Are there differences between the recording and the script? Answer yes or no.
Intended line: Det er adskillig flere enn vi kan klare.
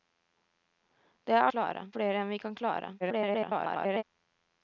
yes